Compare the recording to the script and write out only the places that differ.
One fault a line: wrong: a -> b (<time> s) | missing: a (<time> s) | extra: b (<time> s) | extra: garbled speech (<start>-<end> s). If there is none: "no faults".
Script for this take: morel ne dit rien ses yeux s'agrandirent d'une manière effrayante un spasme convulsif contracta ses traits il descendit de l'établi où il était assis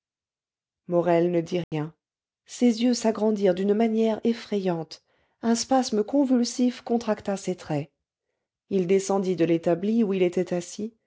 no faults